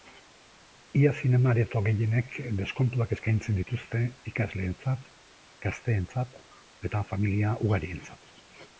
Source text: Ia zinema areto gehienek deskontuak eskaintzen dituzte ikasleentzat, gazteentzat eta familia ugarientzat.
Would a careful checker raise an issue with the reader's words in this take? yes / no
no